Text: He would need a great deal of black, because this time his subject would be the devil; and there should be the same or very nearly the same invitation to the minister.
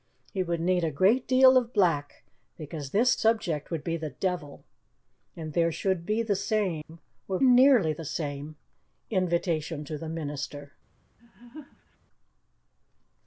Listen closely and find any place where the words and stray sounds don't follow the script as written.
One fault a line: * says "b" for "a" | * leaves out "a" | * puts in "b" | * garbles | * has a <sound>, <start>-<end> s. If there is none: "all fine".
* leaves out "time his"
* has a dropout, 6.8-6.9 s
* leaves out "very"
* has a laugh, 11.2-12.0 s